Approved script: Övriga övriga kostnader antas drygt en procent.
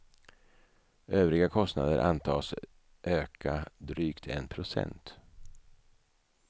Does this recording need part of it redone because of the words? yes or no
yes